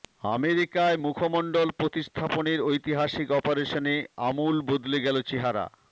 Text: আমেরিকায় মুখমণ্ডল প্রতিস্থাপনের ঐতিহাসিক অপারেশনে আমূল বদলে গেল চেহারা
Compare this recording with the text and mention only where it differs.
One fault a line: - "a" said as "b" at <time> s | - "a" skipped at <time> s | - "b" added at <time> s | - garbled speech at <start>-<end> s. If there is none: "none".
none